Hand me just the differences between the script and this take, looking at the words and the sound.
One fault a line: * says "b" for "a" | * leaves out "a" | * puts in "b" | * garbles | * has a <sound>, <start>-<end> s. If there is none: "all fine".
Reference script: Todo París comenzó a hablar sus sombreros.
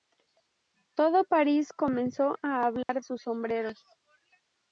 * has a dropout, 2.8-2.9 s